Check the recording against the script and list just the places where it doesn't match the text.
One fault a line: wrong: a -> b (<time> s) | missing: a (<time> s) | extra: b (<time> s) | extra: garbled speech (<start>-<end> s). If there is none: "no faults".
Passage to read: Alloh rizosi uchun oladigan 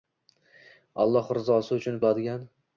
no faults